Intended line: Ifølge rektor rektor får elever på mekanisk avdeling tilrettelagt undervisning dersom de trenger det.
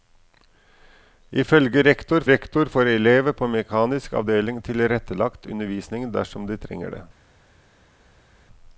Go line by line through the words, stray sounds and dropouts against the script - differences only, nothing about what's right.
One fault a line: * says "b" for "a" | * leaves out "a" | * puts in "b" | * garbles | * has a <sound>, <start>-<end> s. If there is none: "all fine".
all fine